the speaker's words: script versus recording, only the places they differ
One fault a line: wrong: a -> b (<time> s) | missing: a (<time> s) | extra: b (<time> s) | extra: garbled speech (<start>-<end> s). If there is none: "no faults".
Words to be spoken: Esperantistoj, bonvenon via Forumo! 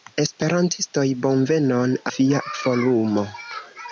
no faults